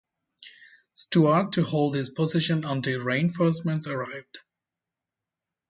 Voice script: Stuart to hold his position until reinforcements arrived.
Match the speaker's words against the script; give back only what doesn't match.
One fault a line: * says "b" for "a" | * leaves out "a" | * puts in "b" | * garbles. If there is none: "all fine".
all fine